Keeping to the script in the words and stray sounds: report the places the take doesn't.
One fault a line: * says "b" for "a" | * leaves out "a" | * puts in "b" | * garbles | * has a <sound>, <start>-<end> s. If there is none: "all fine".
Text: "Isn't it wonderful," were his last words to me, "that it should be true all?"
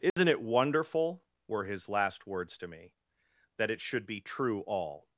* has a dropout, 0.1-0.2 s